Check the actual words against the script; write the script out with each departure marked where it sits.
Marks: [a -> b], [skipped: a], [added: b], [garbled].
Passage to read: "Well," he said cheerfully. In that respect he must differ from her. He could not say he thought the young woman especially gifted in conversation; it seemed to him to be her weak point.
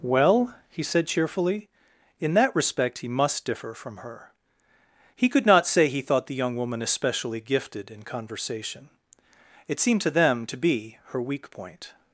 "Well," he said cheerfully. In that respect he must differ from her. He could not say he thought the young woman especially gifted in conversation; it seemed to [him -> them] to be her weak point.